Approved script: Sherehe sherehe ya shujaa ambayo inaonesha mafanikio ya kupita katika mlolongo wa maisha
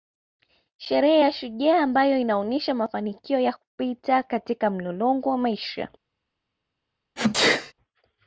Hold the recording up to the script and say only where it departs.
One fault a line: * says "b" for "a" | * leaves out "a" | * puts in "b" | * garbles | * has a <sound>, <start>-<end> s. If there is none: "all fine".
* leaves out "sherehe"
* has a sneeze, 7.2-7.7 s